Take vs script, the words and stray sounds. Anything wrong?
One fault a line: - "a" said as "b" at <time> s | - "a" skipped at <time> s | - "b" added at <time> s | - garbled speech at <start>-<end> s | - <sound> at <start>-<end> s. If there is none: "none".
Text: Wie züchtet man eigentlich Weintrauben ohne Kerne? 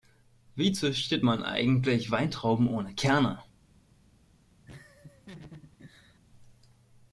- laugh at 4.7-6.2 s